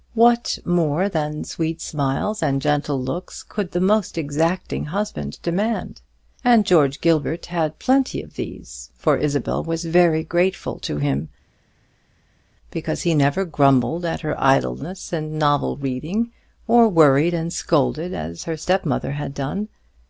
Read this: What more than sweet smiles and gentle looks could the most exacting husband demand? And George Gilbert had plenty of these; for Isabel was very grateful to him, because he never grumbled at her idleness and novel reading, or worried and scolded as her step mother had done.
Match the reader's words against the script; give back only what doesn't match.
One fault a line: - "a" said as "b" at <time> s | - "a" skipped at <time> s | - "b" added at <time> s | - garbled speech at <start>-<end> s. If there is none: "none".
none